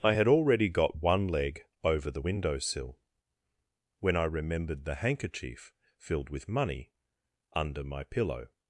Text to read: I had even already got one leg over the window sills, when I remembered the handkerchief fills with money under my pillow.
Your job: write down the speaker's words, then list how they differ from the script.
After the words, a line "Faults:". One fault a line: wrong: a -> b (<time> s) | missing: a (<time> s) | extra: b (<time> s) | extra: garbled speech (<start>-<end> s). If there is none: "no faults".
I had already got one leg over the window sill, when I remembered the handkerchief filled with money under my pillow.
Faults:
missing: even (0.3 s)
wrong: sills -> sill (2.6 s)
wrong: fills -> filled (6.0 s)